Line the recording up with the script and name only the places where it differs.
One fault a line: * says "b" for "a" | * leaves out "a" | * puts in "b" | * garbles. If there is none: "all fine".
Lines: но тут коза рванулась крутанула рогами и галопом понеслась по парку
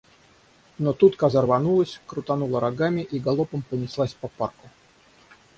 all fine